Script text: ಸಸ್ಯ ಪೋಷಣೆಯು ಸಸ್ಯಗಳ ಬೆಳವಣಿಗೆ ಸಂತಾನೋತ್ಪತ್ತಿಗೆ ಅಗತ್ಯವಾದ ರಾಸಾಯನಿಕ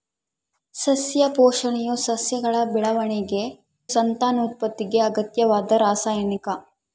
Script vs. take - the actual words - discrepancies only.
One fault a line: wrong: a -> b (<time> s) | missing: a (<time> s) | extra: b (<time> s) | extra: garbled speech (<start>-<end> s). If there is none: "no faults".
no faults